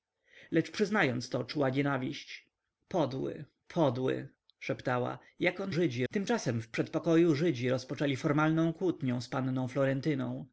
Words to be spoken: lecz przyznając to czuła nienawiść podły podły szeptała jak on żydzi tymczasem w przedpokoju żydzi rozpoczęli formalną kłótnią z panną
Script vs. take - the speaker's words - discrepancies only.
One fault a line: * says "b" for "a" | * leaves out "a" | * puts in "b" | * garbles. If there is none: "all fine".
all fine